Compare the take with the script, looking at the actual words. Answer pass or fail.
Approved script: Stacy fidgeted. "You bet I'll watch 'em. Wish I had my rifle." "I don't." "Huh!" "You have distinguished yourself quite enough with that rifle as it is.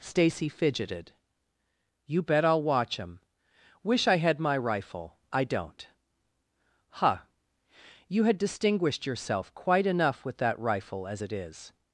fail